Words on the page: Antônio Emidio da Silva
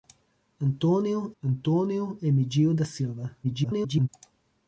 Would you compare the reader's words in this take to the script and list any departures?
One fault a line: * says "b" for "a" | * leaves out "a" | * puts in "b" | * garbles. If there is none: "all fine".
* puts in "antônio"
* garbles